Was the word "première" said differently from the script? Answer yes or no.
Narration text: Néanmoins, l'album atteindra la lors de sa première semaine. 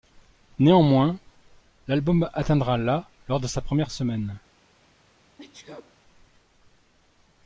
no